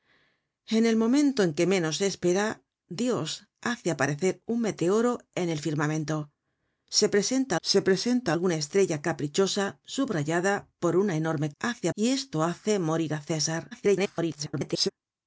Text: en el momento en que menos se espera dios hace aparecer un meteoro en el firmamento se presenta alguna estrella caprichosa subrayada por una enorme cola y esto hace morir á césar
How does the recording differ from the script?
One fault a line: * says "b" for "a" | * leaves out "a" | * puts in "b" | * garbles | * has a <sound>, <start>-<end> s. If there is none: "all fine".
* puts in "se presenta"
* says "hace" for "cola"
* garbles